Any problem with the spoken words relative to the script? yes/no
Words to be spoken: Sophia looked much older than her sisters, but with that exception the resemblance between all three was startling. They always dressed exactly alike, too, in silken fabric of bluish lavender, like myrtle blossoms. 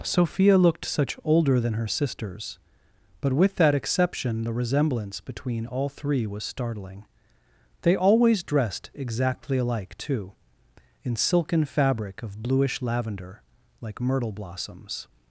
yes